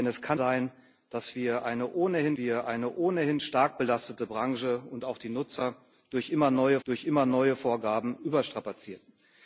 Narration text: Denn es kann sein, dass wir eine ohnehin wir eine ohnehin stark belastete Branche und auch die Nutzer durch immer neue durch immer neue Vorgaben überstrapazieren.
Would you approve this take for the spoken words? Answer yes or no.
yes